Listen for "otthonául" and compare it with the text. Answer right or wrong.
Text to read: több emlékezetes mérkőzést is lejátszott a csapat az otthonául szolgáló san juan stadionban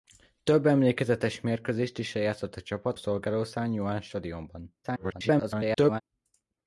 wrong